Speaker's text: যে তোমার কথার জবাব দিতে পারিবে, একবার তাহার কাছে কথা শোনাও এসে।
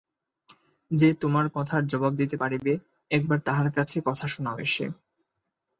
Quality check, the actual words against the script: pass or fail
pass